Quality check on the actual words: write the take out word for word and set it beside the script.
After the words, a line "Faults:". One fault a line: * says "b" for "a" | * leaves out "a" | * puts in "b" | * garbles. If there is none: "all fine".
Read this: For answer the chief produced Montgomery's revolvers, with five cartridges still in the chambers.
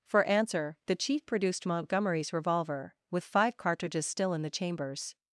For answer the chief produced Montgomery's revolver, with five cartridges still in the chambers.
Faults:
* says "revolver" for "revolvers"